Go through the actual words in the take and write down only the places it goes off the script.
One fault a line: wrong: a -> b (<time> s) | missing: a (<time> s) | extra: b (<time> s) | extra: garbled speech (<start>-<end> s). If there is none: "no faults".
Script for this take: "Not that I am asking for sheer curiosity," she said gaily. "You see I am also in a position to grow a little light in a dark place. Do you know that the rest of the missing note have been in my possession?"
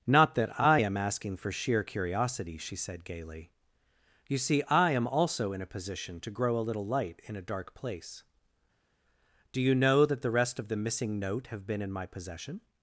no faults